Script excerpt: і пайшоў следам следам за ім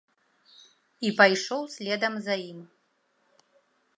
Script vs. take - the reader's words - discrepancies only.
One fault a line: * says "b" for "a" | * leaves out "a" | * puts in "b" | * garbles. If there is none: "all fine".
* leaves out "следам"